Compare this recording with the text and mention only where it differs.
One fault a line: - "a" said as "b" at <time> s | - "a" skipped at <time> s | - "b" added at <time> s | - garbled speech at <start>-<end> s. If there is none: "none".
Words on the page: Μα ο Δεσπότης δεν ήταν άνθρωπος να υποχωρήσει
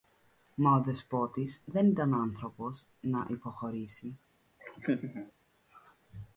none